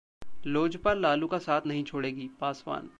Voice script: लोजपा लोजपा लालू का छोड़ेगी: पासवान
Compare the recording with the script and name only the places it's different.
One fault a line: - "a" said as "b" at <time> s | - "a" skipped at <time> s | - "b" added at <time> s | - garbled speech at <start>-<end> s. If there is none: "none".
- "लोजपा" skipped at 0.9 s
- "साथ नहीं" added at 1.4 s